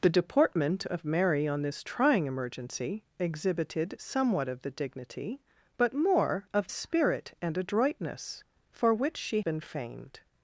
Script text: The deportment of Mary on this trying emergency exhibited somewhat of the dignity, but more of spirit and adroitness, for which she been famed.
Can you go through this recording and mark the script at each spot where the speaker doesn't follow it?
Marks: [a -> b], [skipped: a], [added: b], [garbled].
The deportment of Mary on this trying emergency exhibited somewhat of the dignity, but more of spirit and adroitness, for which she been famed.